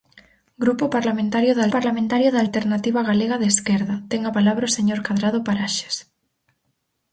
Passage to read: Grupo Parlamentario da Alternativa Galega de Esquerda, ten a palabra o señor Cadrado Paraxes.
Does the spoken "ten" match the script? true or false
true